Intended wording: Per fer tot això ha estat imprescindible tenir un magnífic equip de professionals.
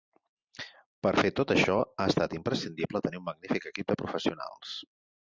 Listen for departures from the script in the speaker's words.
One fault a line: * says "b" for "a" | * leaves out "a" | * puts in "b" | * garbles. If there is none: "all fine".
all fine